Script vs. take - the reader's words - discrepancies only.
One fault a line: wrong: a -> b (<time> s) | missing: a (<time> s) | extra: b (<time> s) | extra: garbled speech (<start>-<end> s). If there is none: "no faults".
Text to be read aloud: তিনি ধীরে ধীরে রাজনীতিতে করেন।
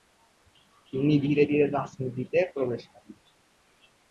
extra: প্রবেশ (2.5 s)